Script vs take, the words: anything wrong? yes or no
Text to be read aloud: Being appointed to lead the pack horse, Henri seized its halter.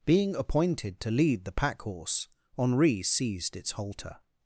no